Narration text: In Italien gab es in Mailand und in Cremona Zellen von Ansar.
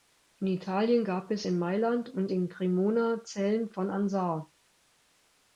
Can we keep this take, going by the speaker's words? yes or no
yes